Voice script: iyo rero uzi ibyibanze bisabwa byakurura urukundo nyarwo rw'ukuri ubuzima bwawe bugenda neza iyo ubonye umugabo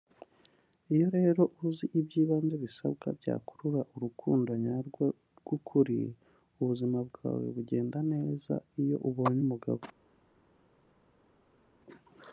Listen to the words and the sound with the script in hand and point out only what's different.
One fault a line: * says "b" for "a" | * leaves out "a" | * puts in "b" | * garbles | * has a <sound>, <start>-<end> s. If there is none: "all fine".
all fine